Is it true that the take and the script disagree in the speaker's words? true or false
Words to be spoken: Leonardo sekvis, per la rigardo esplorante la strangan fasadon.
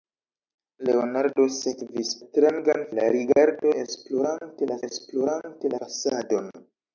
true